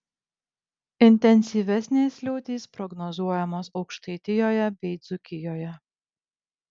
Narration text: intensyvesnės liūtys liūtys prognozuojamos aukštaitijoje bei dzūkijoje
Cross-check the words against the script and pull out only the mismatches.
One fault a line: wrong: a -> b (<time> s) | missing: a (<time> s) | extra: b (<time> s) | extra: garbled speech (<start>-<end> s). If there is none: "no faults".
missing: liūtys (2.6 s)